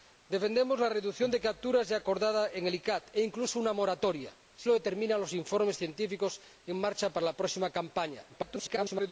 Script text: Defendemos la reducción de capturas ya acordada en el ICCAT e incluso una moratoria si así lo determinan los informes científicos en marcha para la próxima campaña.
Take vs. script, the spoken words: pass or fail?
fail